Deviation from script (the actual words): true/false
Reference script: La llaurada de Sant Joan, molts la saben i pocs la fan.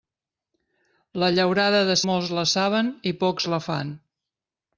true